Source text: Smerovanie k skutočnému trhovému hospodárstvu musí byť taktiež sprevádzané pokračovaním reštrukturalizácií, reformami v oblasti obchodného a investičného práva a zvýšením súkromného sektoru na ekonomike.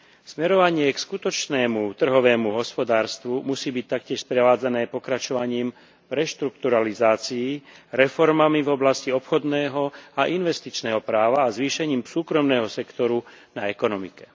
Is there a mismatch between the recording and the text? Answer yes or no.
no